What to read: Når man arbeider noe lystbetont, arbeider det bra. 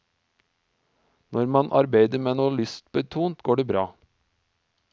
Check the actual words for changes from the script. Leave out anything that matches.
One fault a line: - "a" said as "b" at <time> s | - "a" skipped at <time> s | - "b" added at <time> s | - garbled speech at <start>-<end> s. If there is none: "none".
- "med" added at 2.3 s
- "arbeider" said as "går" at 3.4 s